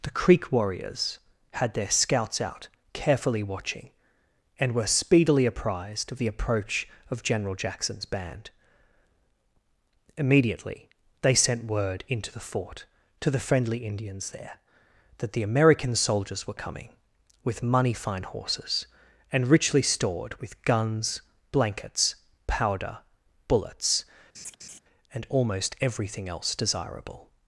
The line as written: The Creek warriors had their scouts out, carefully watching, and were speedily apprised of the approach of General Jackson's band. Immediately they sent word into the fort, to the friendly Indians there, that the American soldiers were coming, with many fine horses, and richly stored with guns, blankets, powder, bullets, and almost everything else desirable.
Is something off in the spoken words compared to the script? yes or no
yes